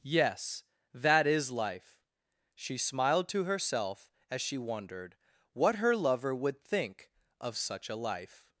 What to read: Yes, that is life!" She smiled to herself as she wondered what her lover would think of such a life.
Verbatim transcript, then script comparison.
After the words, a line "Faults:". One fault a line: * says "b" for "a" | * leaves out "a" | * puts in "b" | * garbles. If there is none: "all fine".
Yes, that is life!" She smiled to herself as she wondered what her lover would think of such a life.
Faults:
all fine